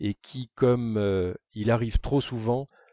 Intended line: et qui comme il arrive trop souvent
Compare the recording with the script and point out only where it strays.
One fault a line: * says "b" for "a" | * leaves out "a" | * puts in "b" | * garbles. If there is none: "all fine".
all fine